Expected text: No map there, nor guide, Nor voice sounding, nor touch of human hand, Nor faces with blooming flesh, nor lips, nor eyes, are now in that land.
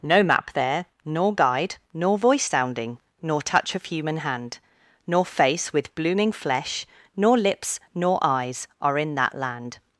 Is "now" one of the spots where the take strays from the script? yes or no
yes